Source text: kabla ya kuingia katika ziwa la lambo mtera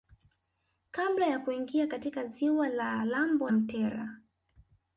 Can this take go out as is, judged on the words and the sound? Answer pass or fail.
pass